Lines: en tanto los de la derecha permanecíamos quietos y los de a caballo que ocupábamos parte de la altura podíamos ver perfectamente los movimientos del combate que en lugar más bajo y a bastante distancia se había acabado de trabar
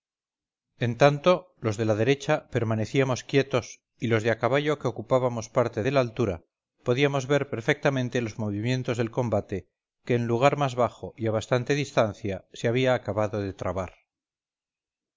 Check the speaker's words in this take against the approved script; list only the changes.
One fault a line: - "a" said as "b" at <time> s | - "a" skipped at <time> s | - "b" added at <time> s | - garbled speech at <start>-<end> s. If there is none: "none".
none